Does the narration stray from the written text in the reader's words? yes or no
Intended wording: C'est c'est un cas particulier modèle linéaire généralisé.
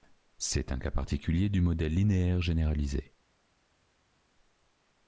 yes